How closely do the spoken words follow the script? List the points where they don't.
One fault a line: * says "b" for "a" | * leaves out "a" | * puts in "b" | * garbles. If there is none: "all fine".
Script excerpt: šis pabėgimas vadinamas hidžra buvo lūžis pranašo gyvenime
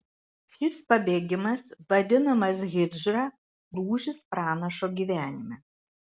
* leaves out "buvo"